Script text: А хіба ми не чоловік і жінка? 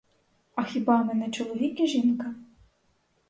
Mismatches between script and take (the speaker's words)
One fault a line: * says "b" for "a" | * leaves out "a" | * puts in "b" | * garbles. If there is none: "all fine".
all fine